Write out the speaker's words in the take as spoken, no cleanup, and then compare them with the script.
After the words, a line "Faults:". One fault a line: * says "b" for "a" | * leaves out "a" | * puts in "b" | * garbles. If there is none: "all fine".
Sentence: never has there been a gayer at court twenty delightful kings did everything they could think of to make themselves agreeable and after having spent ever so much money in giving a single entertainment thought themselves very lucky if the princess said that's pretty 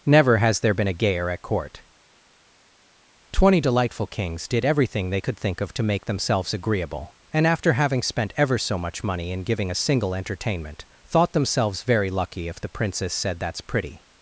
never has there been a gayer at court twenty delightful kings did everything they could think of to make themselves agreeable and after having spent ever so much money in giving a single entertainment thought themselves very lucky if the princess said that's pretty
Faults:
all fine